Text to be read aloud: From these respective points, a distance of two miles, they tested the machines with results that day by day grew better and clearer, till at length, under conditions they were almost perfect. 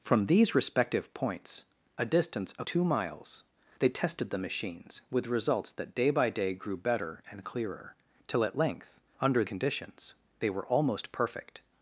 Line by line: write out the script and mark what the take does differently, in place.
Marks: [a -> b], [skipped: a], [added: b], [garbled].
From these respective points, a distance of two miles, they tested the machines with results that day by day grew better and clearer, till at length, under conditions they were almost perfect.